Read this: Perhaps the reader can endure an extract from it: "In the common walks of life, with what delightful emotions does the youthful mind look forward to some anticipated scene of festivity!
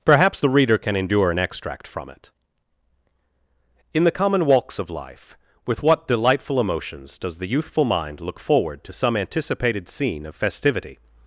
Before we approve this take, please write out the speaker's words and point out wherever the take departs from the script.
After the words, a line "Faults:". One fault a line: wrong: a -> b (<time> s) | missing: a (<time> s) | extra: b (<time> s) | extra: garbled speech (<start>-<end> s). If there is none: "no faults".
Perhaps the reader can endure an extract from it: "In the common walks of life, with what delightful emotions does the youthful mind look forward to some anticipated scene of festivity!
Faults:
no faults